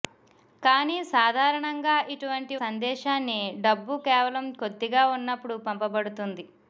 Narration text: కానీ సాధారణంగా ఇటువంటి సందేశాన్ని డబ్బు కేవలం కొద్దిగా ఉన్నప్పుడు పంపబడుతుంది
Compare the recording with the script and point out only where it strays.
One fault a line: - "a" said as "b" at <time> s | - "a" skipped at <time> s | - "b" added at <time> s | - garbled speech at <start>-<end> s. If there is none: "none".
none